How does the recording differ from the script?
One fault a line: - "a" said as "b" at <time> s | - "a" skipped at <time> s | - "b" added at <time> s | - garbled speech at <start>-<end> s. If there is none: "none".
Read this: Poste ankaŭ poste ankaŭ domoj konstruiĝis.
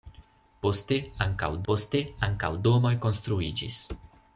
none